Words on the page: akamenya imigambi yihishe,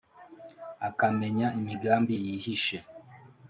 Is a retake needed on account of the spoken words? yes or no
no